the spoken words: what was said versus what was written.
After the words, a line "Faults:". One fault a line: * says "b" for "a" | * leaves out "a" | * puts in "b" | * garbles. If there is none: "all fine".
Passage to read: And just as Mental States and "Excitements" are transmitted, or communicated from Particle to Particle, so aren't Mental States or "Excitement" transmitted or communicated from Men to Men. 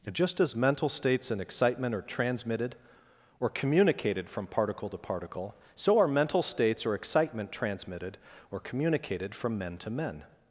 And just as Mental States and "Excitement" are transmitted, or communicated from Particle to Particle, so are Mental States or "Excitement" transmitted or communicated from Men to Men.
Faults:
* says "Excitement" for "Excitements"
* says "are" for "aren't"